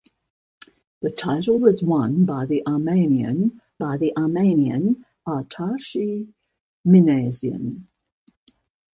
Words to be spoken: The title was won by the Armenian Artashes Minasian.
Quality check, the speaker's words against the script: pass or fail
fail